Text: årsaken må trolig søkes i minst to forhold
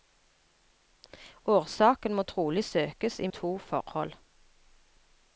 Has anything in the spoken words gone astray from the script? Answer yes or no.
yes